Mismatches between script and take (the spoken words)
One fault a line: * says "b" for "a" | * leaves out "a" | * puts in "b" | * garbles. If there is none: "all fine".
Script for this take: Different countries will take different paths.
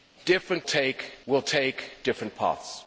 * says "take" for "countries"